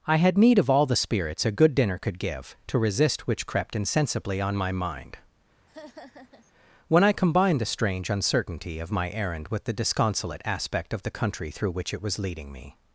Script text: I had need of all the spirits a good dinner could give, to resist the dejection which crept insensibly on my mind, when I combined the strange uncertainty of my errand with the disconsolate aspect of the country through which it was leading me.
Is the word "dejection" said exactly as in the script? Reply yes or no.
no